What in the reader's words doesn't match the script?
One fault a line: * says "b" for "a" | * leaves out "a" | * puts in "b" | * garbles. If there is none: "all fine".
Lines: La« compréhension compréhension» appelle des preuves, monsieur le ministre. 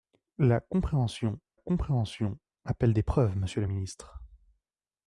all fine